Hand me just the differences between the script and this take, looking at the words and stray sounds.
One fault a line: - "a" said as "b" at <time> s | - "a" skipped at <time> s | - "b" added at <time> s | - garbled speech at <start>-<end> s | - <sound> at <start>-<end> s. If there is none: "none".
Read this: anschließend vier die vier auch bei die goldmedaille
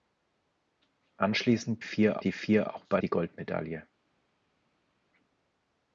none